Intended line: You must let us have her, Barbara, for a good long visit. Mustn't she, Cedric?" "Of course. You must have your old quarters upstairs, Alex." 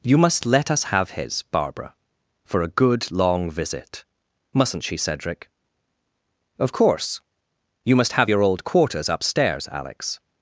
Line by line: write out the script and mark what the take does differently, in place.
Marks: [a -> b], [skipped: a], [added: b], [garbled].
You must let us have [her, -> his] Barbara, for a good long visit. Mustn't she, Cedric?" "Of course. You must have your old quarters upstairs, Alex."